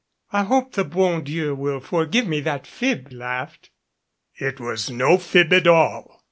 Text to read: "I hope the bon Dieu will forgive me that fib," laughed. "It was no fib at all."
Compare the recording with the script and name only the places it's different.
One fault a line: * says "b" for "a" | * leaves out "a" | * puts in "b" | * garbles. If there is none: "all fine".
all fine